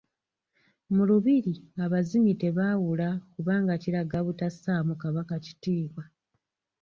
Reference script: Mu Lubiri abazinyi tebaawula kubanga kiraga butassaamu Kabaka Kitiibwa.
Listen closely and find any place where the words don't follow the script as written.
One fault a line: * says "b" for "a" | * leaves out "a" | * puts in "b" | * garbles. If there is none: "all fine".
all fine